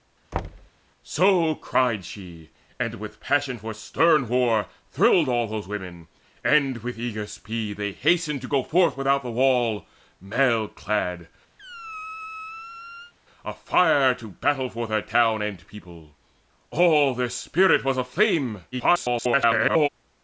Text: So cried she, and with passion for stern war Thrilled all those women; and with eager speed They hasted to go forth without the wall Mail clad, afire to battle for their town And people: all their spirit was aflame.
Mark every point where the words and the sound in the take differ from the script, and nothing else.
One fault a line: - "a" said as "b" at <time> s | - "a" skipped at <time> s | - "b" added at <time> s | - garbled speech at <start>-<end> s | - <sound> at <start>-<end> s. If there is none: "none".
- thud at 0.3-0.7 s
- squeak at 11.6-13.1 s
- garbled speech at 18.7-19.9 s